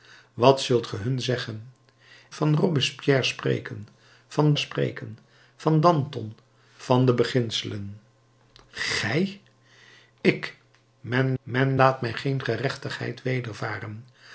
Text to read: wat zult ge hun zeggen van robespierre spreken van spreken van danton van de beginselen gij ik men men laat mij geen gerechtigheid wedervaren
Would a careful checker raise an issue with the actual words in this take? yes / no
no